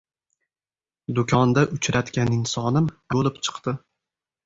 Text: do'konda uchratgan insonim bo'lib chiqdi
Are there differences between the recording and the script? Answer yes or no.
no